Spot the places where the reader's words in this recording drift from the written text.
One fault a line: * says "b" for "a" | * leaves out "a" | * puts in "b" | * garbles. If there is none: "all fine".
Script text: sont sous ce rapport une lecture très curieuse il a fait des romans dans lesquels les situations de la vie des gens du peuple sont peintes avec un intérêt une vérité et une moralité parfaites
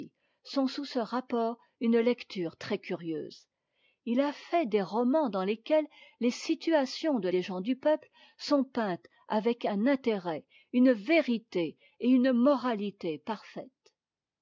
* leaves out "la vie"